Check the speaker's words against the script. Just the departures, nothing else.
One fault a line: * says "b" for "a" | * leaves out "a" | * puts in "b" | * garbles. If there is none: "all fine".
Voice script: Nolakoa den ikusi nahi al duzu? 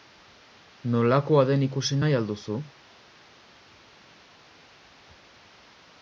all fine